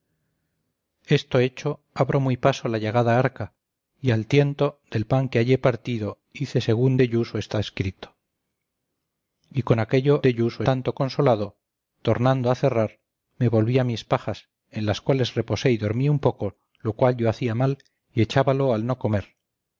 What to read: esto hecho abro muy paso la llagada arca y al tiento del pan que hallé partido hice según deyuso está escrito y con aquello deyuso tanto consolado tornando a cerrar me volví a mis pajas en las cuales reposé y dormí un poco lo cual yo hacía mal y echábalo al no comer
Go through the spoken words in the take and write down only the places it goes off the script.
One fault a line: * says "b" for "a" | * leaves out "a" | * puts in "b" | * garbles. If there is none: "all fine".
all fine